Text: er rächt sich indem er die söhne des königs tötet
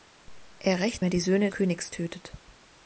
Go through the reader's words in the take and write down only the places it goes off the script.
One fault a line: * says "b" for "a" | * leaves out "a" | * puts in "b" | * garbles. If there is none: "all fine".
* leaves out "sich indem"
* leaves out "des"